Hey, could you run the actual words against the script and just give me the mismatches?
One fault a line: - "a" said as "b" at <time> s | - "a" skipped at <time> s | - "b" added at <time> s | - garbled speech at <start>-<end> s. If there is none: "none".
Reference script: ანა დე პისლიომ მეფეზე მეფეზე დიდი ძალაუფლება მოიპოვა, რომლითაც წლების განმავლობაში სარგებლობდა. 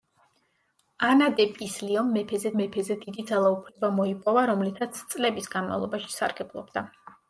none